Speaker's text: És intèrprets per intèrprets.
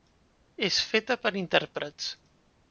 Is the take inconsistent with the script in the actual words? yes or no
yes